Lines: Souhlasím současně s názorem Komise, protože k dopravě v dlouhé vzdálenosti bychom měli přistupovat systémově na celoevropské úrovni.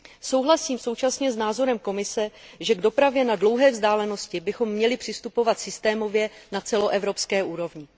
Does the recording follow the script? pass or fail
fail